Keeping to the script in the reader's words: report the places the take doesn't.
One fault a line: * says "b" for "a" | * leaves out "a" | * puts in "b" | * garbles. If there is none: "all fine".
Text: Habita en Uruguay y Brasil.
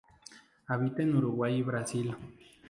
all fine